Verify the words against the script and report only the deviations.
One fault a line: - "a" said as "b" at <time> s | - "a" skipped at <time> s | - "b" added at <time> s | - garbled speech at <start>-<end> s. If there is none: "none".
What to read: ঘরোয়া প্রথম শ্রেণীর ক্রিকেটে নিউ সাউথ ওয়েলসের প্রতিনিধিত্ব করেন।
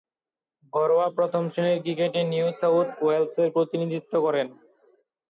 none